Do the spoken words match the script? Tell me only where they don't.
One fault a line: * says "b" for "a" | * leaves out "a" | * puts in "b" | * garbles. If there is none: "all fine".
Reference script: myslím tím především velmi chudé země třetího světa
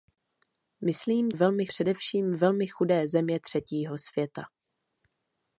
* says "velmi" for "tím"